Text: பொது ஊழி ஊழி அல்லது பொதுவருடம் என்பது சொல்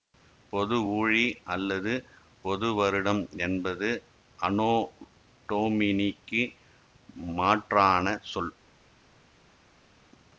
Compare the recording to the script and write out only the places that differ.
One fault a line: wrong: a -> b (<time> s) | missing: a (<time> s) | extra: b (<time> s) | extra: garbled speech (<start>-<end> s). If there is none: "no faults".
missing: ஊழி (1.2 s)
extra: அனோ டொமினிக்கு மாற்றான (4.4 s)